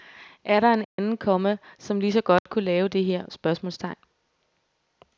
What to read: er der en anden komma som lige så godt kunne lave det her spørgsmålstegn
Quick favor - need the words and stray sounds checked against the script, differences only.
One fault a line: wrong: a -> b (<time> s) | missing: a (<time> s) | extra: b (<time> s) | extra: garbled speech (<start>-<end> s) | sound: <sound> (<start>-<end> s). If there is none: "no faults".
sound: dropout (0.8-1.0 s)
sound: dropout (2.4-2.5 s)